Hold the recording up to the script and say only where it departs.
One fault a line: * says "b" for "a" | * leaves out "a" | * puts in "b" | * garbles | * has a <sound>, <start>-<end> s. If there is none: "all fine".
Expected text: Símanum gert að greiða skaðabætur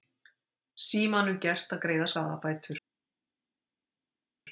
all fine